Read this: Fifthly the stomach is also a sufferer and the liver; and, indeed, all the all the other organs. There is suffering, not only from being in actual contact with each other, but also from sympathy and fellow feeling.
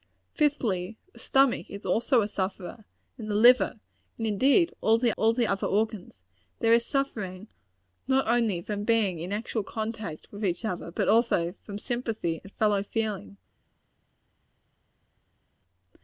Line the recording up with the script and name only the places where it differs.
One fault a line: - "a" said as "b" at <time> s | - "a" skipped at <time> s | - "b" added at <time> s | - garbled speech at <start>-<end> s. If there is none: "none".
none